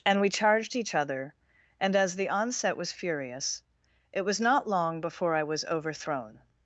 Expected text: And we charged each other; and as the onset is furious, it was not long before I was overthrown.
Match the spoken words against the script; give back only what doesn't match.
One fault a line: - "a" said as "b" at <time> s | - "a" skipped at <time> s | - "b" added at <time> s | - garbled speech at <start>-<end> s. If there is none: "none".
- "is" said as "was" at 2.8 s